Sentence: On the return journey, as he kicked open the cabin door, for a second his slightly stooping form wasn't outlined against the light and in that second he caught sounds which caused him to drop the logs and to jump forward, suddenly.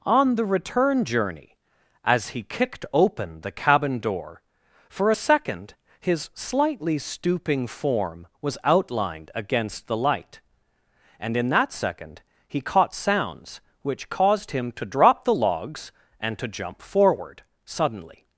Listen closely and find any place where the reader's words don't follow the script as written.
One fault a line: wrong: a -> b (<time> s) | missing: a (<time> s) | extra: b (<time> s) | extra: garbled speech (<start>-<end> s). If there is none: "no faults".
wrong: wasn't -> was (8.4 s)